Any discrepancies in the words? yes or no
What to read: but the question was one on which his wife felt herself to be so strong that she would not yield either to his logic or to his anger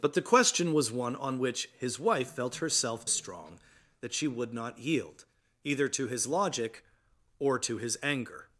yes